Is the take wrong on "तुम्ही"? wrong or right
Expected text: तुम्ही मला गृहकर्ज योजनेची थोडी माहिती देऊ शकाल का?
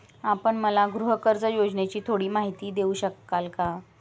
wrong